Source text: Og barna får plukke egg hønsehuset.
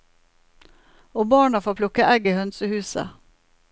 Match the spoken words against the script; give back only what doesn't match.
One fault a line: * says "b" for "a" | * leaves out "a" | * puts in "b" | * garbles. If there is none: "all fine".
* puts in "i"